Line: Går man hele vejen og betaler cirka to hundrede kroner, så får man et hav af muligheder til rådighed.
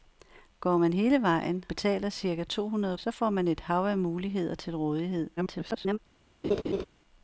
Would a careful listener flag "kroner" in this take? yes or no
yes